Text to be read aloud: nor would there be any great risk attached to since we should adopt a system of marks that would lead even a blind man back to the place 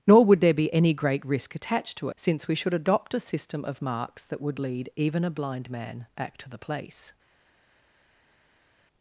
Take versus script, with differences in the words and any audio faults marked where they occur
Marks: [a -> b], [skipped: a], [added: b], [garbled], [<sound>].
nor would there be any great risk attached to since we should adopt a system of marks that would lead even a blind man back to the place